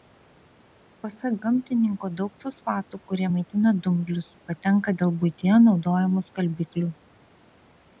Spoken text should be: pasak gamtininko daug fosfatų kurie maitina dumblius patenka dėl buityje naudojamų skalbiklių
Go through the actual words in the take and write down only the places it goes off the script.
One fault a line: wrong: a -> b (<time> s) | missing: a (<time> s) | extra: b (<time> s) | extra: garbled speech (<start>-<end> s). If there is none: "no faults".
no faults